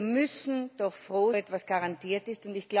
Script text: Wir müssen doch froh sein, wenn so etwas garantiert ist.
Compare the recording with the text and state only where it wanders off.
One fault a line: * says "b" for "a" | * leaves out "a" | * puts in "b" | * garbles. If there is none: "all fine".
* leaves out "sein wenn so"